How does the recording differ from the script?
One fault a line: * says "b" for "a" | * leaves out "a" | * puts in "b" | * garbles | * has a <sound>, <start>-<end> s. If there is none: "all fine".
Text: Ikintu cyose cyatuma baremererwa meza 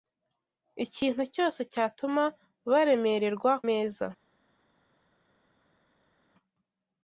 all fine